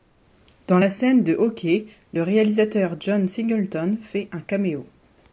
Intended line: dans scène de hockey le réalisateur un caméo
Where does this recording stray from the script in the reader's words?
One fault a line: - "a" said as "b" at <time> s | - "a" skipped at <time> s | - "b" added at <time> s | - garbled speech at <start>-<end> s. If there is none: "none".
- "la" added at 0.8 s
- "john singleton fait" added at 3.0 s